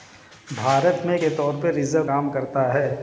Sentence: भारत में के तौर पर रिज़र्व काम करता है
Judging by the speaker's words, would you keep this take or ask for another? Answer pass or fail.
pass